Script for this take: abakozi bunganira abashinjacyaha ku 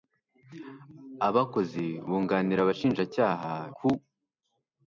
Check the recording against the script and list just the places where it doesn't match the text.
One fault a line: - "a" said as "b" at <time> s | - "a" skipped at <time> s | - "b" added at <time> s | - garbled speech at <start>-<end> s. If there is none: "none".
none